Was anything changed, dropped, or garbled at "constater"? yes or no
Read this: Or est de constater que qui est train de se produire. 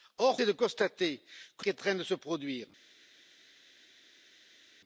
no